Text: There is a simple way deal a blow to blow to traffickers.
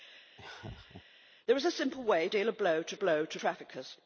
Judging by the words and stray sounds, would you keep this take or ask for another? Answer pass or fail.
fail